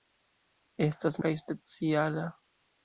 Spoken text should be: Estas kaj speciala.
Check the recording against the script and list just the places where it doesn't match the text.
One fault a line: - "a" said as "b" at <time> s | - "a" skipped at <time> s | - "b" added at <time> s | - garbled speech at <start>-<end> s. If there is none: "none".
none